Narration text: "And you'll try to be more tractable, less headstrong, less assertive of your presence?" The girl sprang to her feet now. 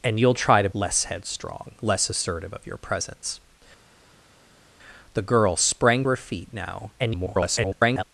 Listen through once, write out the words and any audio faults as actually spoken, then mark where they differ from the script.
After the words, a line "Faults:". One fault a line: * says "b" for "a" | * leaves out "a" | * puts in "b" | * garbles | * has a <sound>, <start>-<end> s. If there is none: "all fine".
"And you'll try to less headstrong, less assertive of your presence?" The girl sprang her feet now. [garbled]
Faults:
* leaves out "be more tractable"
* leaves out "to"
* garbles